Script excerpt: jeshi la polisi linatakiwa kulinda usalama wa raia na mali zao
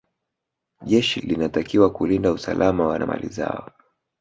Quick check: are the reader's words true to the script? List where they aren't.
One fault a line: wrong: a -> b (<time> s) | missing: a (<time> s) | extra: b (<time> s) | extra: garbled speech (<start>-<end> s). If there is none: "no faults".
missing: la polisi (1.2 s)
missing: raia (3.0 s)